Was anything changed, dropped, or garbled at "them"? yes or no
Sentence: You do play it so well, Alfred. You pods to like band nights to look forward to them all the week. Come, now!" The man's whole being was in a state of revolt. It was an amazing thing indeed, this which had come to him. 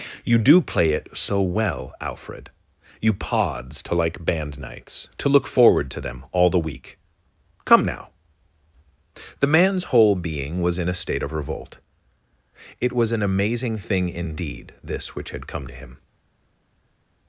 no